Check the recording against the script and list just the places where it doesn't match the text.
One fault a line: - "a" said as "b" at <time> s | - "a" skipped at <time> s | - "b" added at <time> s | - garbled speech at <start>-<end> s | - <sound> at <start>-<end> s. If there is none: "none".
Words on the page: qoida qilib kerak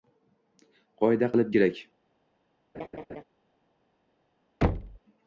- laugh at 2.7-3.2 s
- thud at 4.6-5.0 s